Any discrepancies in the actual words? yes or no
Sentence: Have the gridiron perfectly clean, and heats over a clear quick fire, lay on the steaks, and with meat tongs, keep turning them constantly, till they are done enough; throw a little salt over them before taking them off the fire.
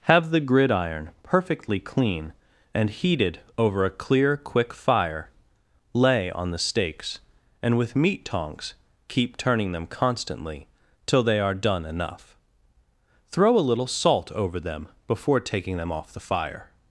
yes